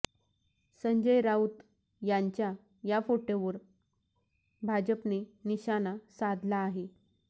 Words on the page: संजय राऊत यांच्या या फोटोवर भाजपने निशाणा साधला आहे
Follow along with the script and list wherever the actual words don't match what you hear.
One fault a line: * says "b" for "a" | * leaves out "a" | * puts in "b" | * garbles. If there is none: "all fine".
all fine